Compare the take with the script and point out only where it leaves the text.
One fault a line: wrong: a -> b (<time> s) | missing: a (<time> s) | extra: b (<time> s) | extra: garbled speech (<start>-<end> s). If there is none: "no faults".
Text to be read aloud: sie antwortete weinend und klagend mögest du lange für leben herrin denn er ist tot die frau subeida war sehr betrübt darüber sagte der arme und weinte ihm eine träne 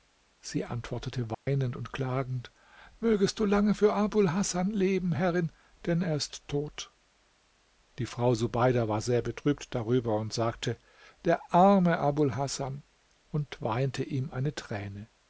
extra: abul hasan (3.9 s)
extra: und (10.2 s)
extra: abul hasan (12.0 s)